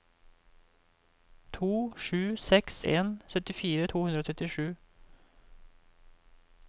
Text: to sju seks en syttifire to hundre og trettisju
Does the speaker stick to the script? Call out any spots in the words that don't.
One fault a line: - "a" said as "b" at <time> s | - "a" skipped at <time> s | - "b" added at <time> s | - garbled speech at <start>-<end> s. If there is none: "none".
none